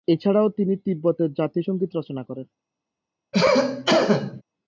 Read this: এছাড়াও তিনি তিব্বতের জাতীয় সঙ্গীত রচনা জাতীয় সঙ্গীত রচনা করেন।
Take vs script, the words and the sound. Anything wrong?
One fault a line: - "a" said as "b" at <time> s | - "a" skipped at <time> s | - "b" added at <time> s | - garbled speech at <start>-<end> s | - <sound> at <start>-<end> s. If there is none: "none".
- "জাতীয় সঙ্গীত রচনা" skipped at 2.2 s
- cough at 3.3-4.4 s